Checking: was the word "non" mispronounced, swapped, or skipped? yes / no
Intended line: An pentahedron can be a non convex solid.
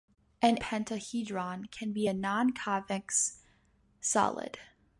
no